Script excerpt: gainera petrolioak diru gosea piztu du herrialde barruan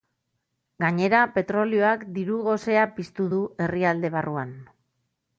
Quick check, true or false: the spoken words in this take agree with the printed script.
true